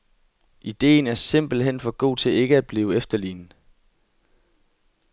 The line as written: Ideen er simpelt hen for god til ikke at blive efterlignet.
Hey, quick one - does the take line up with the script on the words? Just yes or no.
yes